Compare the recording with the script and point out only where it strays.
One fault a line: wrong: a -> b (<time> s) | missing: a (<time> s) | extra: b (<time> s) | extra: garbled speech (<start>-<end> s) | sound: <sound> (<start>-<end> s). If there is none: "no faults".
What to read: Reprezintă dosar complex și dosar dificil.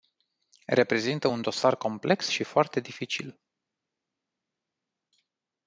extra: un (1.2 s)
wrong: dosar -> foarte (2.4 s)